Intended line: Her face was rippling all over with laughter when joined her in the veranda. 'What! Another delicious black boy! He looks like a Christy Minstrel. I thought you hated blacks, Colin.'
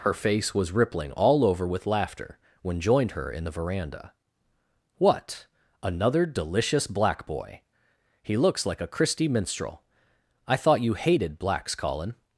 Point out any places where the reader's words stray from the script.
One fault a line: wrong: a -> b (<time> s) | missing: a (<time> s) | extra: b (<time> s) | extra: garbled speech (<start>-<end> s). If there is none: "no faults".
no faults